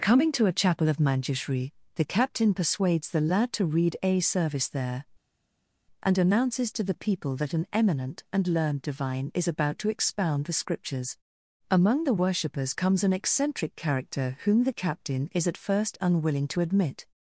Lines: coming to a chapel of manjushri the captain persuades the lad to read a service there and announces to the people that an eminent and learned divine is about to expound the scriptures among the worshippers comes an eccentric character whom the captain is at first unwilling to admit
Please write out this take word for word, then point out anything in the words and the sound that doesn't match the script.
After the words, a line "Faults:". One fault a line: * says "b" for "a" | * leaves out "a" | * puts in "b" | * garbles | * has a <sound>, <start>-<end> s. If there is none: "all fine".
coming to a chapel of manjushri the captain persuades the lad to read a service there and announces to the people that an eminent and learned divine is about to expound the scriptures among the worshippers comes an eccentric character whom the captain is at first unwilling to admit
Faults:
all fine